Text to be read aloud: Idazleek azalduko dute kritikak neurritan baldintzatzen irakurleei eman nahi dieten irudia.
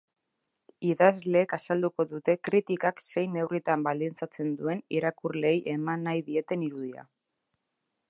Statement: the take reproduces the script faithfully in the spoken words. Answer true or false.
false